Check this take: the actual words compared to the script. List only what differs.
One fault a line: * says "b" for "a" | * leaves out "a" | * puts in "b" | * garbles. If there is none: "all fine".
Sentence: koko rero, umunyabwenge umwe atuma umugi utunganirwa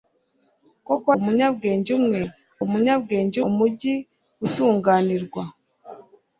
* leaves out "rero"
* says "umunyabwenge" for "atuma"